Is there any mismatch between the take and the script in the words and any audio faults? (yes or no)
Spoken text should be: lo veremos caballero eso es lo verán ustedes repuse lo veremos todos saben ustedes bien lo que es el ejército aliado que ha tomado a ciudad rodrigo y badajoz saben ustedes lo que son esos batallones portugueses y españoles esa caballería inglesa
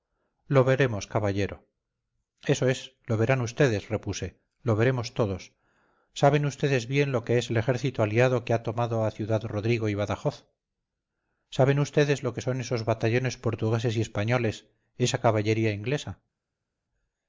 no